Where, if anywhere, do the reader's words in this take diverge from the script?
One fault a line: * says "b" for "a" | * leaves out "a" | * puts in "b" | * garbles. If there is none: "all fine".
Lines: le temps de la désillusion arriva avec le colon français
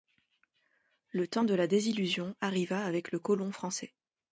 all fine